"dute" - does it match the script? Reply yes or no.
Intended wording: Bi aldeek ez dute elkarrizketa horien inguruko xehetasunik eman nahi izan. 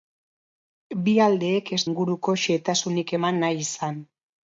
no